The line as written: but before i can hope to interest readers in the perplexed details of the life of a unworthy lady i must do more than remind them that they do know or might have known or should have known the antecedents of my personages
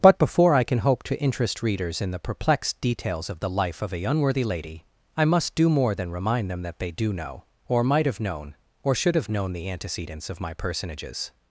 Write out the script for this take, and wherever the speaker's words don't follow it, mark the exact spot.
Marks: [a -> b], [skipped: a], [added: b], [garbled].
but before i can hope to interest readers in the perplexed details of the life of a unworthy lady i must do more than remind them that they do know or might have known or should have known the antecedents of my personages